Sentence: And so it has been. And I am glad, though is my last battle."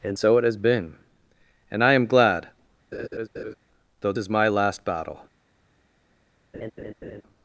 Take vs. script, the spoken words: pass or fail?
pass